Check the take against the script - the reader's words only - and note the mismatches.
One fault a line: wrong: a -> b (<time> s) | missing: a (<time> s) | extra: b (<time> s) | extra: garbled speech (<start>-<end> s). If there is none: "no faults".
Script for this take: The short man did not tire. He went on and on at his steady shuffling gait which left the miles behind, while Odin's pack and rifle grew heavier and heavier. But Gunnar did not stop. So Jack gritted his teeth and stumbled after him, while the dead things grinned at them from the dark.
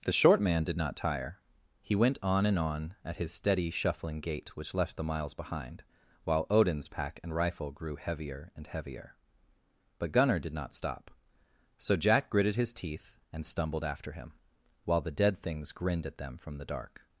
no faults